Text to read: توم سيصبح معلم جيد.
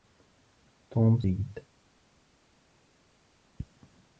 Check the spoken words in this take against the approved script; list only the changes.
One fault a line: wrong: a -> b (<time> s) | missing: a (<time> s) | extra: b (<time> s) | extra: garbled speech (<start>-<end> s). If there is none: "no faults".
missing: سيصبح معلم (1.2 s)